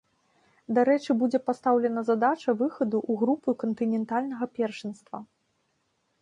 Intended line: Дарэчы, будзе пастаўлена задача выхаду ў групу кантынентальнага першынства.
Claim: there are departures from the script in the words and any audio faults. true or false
false